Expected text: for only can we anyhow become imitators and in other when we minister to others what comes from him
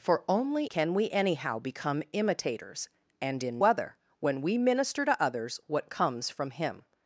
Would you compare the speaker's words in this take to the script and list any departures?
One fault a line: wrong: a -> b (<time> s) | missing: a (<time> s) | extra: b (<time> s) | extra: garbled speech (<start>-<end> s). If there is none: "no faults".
no faults